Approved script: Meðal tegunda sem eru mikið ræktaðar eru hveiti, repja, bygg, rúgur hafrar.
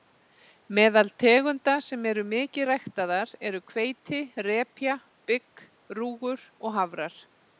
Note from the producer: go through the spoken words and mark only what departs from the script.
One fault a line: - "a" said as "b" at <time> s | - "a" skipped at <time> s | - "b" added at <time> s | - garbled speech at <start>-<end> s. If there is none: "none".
- "og" added at 6.7 s